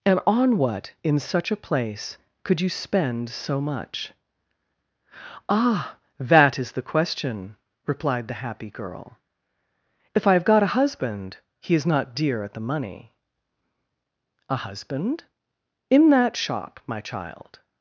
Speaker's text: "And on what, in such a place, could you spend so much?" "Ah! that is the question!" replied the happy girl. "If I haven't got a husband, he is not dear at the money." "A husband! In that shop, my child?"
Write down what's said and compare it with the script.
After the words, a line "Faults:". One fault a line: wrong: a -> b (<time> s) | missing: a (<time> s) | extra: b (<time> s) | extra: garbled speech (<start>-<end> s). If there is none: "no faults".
"And on what, in such a place, could you spend so much?" "Ah! that is the question!" replied the happy girl. "If I have got a husband, he is not dear at the money." "A husband! In that shop, my child?"
Faults:
wrong: haven't -> have (10.3 s)